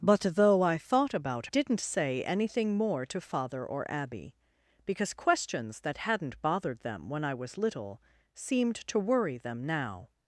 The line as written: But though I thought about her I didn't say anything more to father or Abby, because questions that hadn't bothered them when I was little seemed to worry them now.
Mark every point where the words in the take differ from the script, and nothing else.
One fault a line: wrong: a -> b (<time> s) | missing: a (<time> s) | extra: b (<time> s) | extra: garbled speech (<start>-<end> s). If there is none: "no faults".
missing: her I (1.5 s)